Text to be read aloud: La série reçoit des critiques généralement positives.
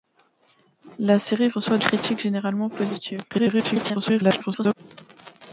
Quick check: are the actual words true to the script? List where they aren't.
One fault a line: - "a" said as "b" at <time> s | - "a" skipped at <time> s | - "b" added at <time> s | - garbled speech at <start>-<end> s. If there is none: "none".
- "des" skipped at 1.8 s
- garbled speech at 3.3-4.7 s